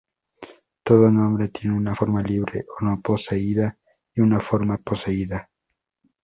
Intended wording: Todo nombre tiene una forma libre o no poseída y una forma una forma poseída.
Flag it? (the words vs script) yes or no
yes